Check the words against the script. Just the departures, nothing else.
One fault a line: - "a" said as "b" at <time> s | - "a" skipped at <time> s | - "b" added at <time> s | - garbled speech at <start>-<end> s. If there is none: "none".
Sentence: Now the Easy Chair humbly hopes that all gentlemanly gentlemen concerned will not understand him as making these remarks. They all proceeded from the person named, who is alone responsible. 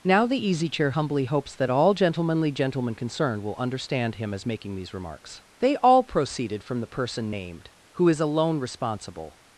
- "not" skipped at 3.6 s